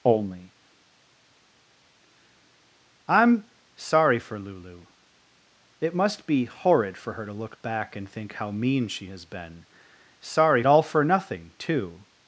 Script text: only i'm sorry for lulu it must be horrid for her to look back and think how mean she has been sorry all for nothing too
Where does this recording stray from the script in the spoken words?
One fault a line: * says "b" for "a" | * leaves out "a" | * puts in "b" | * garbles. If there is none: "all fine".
all fine